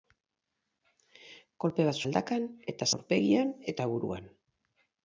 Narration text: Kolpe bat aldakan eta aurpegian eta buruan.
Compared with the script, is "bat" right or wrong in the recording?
right